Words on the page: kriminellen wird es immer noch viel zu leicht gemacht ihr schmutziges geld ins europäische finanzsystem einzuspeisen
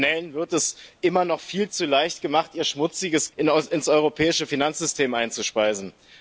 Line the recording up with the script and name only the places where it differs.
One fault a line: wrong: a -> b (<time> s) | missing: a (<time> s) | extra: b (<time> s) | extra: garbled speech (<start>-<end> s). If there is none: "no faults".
missing: geld (3.3 s)